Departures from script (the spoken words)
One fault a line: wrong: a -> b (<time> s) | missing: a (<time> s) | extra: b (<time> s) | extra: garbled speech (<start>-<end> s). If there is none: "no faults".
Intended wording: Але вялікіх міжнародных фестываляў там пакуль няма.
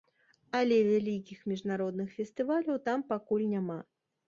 no faults